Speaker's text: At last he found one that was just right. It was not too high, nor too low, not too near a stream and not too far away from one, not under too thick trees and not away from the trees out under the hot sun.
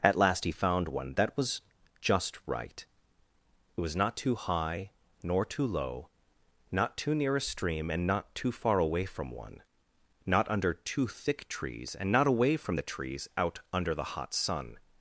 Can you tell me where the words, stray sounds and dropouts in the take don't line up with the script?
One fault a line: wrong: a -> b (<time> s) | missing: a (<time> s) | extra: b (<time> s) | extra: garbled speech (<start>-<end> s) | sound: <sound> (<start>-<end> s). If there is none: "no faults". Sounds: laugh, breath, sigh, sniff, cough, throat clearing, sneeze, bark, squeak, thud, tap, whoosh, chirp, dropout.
no faults